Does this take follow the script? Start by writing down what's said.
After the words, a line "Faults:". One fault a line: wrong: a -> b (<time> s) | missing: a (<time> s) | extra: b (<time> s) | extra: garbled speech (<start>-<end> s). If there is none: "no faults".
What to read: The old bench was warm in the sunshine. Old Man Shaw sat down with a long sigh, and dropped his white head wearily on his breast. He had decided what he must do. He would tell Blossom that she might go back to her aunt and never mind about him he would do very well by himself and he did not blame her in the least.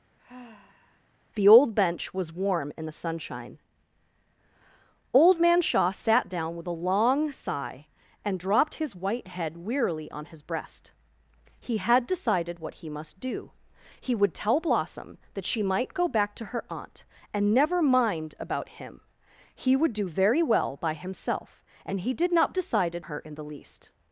The old bench was warm in the sunshine. Old Man Shaw sat down with a long sigh, and dropped his white head wearily on his breast. He had decided what he must do. He would tell Blossom that she might go back to her aunt and never mind about him he would do very well by himself and he did not decided her in the least.
Faults:
wrong: blame -> decided (22.5 s)